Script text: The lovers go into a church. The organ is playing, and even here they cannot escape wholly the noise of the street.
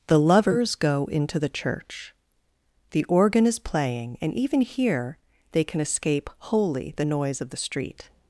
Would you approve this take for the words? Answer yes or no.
no